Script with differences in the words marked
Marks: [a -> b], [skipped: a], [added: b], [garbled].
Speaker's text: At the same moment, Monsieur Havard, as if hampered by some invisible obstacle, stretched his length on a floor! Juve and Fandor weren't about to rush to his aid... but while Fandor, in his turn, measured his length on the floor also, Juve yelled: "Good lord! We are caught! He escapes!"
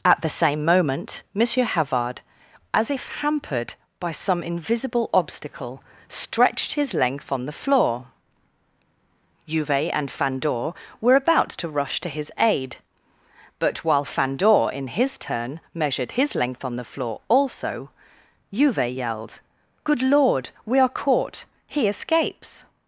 At the same moment, Monsieur Havard, as if hampered by some invisible obstacle, stretched his length on [a -> the] floor! Juve and Fandor [weren't -> were] about to rush to his aid... but while Fandor, in his turn, measured his length on the floor also, Juve yelled: "Good lord! We are caught! He escapes!"